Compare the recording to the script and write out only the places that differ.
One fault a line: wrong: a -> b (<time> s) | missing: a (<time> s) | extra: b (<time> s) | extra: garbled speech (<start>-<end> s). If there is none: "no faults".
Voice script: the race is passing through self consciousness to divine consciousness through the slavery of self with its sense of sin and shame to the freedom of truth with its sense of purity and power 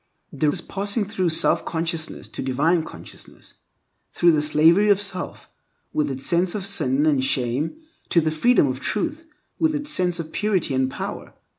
missing: race (0.5 s)